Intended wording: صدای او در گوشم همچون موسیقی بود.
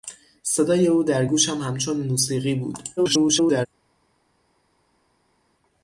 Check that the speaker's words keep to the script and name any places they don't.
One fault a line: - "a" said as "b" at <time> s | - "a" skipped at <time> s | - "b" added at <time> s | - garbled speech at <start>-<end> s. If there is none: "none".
- garbled speech at 3.0-3.7 s